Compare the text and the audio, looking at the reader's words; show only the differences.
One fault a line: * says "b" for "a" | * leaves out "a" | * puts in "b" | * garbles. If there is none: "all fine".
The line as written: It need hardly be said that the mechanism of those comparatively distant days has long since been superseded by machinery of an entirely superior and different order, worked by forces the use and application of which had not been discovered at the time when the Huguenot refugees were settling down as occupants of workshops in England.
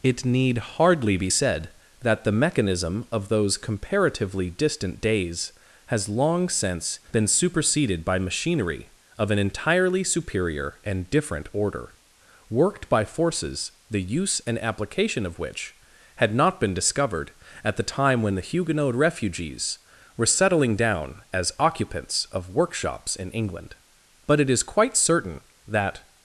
* puts in "But it is quite certain that"